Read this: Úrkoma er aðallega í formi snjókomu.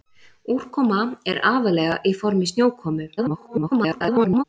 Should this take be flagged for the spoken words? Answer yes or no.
yes